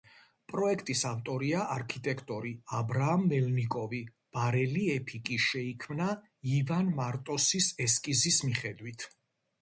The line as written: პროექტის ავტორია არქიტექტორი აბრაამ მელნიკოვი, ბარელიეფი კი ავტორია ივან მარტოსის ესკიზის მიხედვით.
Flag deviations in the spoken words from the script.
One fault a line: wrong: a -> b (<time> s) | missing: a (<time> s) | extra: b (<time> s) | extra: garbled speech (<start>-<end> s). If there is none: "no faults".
wrong: ავტორია -> შეიქმნა (5.5 s)